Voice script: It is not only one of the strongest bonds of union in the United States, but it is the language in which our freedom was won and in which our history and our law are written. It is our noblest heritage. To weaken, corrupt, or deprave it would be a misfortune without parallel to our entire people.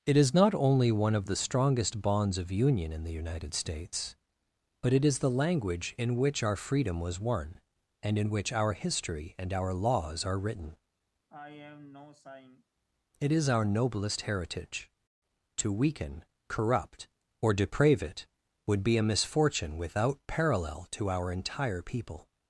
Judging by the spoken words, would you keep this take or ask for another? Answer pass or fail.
fail